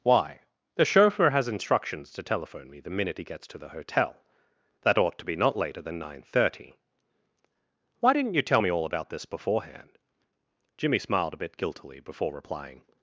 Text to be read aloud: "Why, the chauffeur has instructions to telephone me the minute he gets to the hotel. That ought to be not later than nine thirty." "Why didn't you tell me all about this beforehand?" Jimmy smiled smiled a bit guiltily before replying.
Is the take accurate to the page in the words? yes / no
no